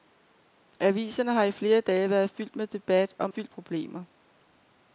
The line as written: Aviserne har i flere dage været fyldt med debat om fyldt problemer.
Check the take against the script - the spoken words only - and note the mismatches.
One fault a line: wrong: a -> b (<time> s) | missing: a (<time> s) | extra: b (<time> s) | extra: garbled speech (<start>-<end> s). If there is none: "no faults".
no faults